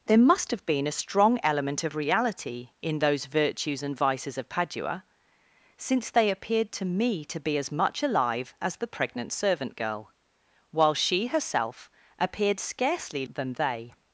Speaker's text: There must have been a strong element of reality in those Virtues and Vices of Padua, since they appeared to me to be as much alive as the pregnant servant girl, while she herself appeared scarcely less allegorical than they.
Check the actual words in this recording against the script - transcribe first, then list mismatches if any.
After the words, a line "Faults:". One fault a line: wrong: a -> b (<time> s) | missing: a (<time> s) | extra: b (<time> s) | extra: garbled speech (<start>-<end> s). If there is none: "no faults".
There must have been a strong element of reality in those Virtues and Vices of Padua, since they appeared to me to be as much alive as the pregnant servant girl, while she herself appeared scarcely than they.
Faults:
missing: less allegorical (13.3 s)